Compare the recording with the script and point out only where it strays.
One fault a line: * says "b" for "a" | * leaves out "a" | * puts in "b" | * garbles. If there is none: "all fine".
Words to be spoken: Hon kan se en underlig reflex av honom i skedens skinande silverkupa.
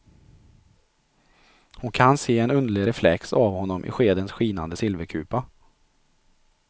all fine